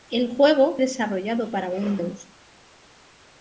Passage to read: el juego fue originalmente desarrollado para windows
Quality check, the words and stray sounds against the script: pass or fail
fail